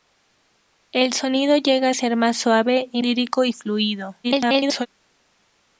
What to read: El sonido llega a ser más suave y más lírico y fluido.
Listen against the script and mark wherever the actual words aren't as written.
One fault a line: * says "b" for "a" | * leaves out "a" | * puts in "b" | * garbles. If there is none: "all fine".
* leaves out "más"
* garbles